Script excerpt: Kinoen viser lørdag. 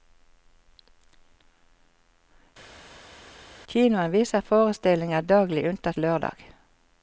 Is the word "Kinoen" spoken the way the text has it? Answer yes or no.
yes